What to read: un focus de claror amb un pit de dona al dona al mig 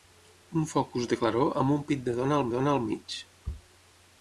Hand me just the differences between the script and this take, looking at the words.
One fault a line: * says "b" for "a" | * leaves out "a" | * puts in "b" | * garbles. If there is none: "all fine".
all fine